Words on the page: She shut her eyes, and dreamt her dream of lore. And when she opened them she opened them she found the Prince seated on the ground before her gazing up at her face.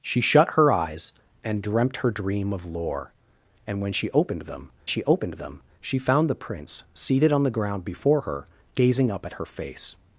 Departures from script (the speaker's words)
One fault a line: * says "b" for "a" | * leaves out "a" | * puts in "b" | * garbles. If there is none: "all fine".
all fine